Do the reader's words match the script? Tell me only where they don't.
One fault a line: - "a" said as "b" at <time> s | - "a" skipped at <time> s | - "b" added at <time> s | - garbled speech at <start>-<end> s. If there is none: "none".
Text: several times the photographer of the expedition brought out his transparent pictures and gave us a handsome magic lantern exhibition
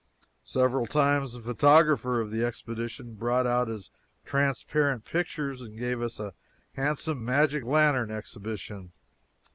none